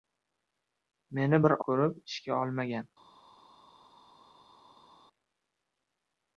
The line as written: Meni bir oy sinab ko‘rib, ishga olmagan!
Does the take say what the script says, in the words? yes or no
no